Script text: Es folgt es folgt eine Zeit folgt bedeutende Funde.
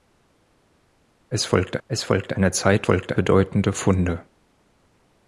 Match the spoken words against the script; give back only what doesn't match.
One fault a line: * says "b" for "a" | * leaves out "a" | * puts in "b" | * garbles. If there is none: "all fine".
all fine